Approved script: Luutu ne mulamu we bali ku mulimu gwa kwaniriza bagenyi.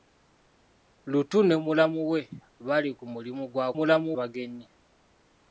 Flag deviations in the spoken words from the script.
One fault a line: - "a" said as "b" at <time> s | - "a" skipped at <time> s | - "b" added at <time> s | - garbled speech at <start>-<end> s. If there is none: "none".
- "kwaniriza" said as "mulamu" at 3.8 s